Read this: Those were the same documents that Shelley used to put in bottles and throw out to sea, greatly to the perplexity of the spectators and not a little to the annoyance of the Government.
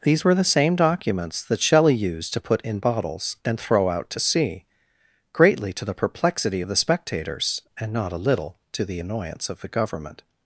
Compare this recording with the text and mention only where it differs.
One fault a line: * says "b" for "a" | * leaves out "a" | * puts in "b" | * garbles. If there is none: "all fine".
* says "These" for "Those"